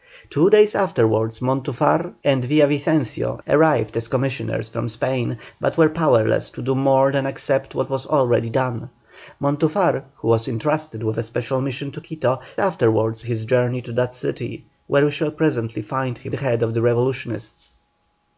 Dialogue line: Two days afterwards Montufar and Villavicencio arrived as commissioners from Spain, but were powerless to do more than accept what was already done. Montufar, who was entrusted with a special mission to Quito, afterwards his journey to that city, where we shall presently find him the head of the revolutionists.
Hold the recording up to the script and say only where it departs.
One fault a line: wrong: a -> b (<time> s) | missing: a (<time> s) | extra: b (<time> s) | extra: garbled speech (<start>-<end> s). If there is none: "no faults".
no faults